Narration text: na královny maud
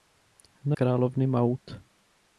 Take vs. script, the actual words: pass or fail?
pass